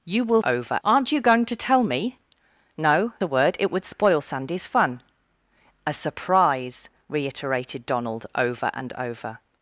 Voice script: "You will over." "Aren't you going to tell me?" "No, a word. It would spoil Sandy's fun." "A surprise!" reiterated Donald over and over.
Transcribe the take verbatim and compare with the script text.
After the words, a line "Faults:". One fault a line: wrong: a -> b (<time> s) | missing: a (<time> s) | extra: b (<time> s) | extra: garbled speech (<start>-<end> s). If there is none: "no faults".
"You will over." "Aren't you going to tell me?" "No, a word. It would spoil Sandy's fun." "A surprise!" reiterated Donald over and over.
Faults:
no faults